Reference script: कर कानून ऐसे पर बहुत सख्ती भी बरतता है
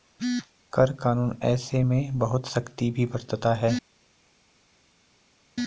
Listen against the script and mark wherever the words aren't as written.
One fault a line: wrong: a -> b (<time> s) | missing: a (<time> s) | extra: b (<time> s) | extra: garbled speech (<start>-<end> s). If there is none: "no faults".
wrong: पर -> में (1.8 s)